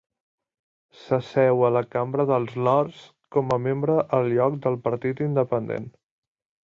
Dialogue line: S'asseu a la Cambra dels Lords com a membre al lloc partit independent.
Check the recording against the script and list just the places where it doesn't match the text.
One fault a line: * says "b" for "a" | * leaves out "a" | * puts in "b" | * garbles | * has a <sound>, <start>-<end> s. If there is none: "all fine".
* puts in "del"